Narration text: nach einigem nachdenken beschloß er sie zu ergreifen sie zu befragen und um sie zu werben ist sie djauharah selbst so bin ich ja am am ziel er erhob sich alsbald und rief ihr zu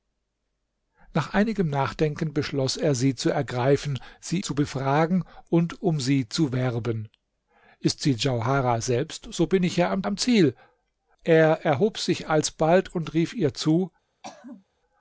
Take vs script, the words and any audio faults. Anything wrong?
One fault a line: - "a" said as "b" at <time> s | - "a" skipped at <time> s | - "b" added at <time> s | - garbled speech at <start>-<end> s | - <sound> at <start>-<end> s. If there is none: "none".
- throat clearing at 14.2-14.7 s